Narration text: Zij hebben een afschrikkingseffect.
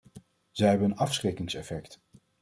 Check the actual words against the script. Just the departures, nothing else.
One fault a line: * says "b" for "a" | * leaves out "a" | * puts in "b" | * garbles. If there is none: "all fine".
all fine